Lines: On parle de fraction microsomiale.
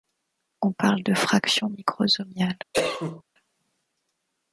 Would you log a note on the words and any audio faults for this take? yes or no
yes